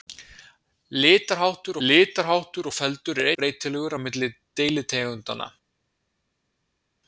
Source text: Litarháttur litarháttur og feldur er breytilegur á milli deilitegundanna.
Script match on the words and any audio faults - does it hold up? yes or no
yes